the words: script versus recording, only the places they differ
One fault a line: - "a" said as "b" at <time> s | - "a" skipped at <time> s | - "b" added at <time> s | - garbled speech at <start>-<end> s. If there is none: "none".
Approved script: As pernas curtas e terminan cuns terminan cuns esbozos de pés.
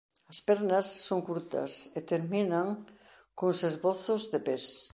- "son" added at 1.1 s
- "terminan cuns" skipped at 3.6 s